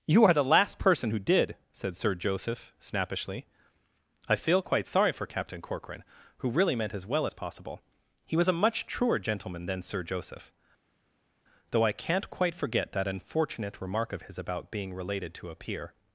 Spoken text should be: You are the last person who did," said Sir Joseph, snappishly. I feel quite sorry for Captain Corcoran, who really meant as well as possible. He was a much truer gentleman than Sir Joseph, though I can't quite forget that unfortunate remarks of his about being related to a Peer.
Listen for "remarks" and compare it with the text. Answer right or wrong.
wrong